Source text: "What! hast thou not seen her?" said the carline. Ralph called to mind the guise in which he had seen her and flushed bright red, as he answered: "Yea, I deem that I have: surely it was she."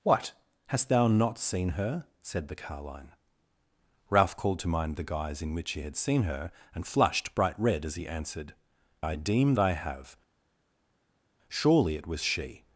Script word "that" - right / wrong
wrong